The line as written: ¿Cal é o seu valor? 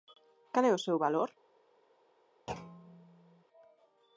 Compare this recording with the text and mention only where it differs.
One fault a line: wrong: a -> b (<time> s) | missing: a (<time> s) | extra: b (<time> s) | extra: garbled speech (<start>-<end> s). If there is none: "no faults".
no faults